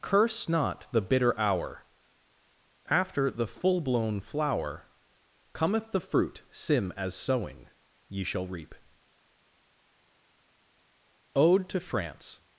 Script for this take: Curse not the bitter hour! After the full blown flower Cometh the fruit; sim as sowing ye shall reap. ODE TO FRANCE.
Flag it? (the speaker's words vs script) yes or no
no